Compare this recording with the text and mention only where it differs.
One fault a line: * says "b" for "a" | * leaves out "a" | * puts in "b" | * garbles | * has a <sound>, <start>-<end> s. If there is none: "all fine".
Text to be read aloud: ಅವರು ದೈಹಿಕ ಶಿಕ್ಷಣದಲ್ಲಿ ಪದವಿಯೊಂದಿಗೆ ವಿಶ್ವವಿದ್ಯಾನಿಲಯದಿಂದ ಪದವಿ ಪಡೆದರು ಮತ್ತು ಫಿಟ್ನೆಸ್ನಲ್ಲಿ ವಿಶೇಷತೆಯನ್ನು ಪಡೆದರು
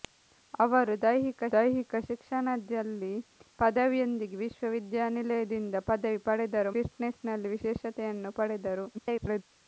* puts in "ದೈಹಿಕ"
* leaves out "ಮತ್ತು"
* garbles